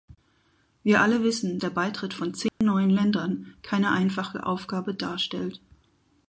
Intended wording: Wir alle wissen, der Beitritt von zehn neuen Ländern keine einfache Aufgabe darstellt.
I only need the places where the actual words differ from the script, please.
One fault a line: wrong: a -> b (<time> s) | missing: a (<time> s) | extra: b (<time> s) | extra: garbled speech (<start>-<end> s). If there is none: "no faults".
no faults